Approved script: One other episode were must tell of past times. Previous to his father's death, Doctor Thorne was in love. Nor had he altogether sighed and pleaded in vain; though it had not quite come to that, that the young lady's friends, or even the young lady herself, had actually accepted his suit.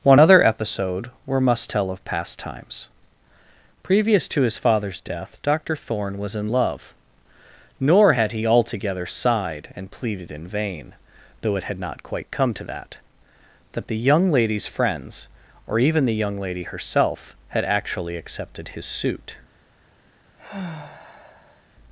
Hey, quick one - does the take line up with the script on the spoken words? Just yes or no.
yes